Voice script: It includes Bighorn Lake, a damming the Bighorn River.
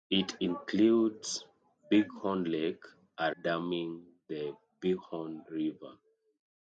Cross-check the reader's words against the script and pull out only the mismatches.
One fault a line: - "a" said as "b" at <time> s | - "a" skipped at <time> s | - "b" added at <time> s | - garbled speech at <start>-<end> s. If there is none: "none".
none